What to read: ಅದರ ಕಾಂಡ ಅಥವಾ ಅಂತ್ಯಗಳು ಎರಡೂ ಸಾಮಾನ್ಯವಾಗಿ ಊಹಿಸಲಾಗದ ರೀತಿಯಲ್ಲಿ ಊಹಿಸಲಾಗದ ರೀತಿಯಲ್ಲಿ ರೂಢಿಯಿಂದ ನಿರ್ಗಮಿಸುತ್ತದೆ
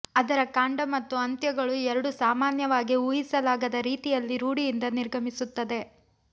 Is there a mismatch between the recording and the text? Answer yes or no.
yes